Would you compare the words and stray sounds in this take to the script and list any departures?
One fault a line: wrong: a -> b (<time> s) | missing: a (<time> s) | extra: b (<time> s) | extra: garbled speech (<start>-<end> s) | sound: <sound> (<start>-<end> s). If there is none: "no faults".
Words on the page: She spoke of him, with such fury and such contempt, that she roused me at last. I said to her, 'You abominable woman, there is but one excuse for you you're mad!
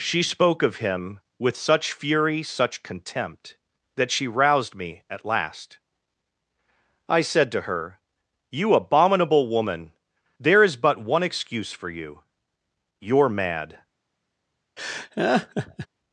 missing: and (2.4 s)
sound: laugh (14.8-15.9 s)